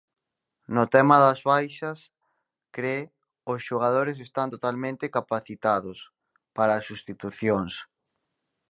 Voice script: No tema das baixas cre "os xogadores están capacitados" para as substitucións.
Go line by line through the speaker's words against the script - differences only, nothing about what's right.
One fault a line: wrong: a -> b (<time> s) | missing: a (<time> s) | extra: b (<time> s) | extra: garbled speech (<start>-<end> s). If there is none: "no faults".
extra: totalmente (4.5 s)